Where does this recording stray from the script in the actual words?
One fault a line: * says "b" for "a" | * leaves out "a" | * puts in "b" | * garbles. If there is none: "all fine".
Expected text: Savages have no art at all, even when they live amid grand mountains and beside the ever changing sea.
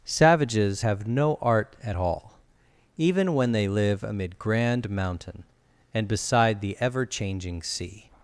* says "mountain" for "mountains"